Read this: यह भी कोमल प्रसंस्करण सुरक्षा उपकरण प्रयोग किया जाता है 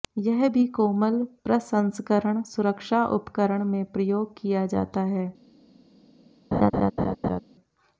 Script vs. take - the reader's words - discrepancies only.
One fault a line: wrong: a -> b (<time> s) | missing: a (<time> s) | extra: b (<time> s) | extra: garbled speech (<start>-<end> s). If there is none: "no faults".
extra: में (3.6 s)